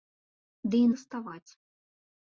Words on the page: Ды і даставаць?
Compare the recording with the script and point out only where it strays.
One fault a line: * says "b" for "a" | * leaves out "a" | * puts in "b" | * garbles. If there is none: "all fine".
all fine